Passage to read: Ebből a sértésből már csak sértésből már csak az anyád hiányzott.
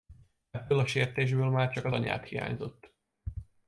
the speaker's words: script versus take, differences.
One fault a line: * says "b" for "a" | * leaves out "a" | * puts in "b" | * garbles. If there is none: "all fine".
* leaves out "sértésből már csak"